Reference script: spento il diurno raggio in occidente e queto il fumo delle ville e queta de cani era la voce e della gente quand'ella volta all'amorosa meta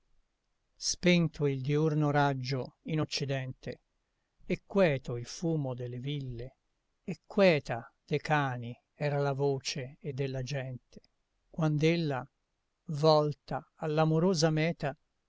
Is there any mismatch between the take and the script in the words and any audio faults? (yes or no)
no